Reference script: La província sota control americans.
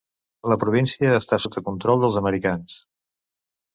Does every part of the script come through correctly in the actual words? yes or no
no